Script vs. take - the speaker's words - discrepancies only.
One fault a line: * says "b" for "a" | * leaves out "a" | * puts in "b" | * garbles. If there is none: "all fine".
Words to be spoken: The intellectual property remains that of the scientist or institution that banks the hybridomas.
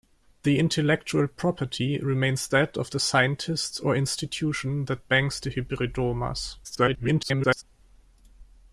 * garbles